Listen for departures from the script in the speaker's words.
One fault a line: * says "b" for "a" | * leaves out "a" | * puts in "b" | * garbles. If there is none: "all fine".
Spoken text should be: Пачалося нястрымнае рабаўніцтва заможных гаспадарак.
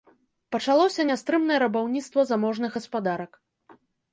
all fine